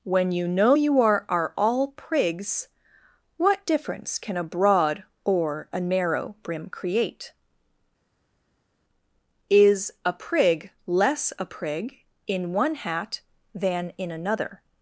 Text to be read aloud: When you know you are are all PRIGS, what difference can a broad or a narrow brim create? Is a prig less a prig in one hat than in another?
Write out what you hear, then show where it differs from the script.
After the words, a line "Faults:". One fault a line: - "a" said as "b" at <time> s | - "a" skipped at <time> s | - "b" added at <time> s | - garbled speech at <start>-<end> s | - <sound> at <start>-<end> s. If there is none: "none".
When you know you are are all PRIGS, what difference can a broad or a narrow brim create? Is a prig less a prig in one hat than in another?
Faults:
none